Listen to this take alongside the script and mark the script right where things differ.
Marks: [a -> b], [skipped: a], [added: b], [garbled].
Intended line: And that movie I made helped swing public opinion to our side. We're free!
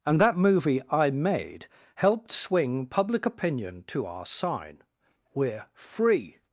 And that movie I made helped swing public opinion to our [side. -> sign] We're free!